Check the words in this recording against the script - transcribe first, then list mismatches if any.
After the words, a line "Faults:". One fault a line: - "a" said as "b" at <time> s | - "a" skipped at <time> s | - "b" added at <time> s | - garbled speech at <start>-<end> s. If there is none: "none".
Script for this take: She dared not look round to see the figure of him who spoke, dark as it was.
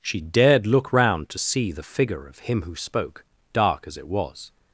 She dared look round to see the figure of him who spoke, dark as it was.
Faults:
- "not" skipped at 0.7 s